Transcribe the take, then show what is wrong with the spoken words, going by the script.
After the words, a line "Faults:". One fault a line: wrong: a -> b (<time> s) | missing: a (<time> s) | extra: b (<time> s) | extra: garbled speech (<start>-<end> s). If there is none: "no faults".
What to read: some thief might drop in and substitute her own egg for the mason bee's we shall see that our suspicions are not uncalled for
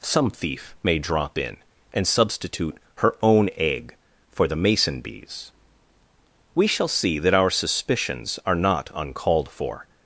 some thief may drop in and substitute her own egg for the mason bee's we shall see that our suspicions are not uncalled for
Faults:
wrong: might -> may (0.8 s)